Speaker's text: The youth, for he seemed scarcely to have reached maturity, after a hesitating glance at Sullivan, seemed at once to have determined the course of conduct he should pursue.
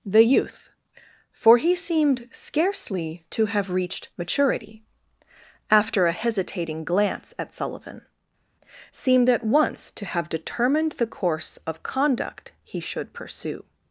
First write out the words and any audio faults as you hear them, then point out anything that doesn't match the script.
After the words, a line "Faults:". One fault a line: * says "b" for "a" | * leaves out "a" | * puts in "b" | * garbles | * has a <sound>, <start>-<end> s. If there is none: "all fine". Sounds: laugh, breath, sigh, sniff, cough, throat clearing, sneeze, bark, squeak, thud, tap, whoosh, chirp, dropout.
The youth, for he seemed scarcely to have reached maturity, after a hesitating glance at Sullivan, seemed at once to have determined the course of conduct he should pursue.
Faults:
all fine